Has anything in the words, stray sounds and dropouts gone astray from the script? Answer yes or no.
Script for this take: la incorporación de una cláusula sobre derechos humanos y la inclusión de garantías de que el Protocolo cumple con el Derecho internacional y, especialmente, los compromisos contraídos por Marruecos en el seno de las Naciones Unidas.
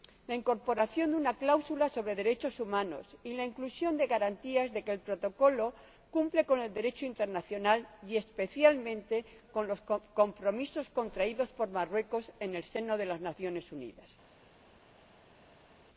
yes